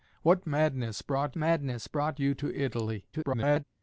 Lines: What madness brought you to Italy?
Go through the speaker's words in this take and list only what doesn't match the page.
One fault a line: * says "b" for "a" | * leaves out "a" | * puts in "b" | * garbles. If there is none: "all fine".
* puts in "madness brought"
* garbles